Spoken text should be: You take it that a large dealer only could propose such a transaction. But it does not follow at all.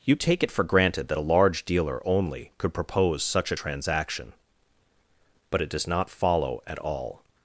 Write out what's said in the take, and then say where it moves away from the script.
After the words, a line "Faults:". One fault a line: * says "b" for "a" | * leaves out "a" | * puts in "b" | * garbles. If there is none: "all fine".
You take it for granted that a large dealer only could propose such a transaction. But it does not follow at all.
Faults:
* puts in "for granted"